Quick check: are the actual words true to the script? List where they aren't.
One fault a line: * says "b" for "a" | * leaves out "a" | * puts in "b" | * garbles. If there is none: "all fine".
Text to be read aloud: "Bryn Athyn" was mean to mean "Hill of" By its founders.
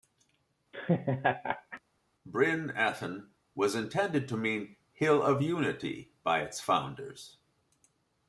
* says "intended" for "mean"
* puts in "Unity"